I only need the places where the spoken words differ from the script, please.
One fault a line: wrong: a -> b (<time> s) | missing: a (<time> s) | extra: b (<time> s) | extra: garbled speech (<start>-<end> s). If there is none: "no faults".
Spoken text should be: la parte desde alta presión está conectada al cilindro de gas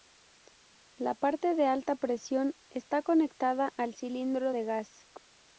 wrong: desde -> de (1.5 s)